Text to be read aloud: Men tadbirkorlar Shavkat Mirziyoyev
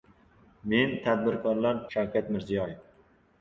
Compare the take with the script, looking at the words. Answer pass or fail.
pass